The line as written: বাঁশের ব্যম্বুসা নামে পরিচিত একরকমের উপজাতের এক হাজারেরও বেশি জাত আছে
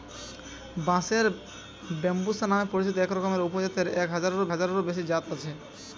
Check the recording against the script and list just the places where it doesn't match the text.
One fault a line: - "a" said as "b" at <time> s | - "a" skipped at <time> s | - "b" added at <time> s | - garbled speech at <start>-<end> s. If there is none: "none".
- "হাজারেরও" added at 4.5 s